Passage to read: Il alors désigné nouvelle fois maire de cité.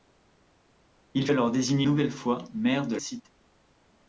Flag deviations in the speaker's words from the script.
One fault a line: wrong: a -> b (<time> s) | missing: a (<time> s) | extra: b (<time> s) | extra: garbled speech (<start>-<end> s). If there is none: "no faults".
no faults